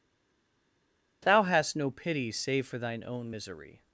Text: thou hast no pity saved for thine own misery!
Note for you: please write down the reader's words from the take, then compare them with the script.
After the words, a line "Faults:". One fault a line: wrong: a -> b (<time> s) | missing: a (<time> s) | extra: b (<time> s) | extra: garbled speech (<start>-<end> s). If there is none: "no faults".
thou hast no pity save for thine own misery!
Faults:
wrong: saved -> save (2.3 s)